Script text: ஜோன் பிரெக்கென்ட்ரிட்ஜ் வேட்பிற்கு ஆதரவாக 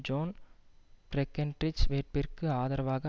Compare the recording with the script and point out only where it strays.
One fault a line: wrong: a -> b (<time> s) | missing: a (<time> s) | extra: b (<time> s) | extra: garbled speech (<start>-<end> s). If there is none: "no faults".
no faults